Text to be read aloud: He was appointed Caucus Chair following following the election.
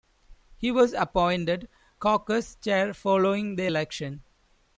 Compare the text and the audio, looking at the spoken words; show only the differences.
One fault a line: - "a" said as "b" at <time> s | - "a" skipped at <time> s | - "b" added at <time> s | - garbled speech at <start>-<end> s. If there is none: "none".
- "following" skipped at 3.5 s